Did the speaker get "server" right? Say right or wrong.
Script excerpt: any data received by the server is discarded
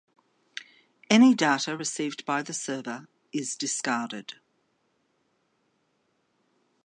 right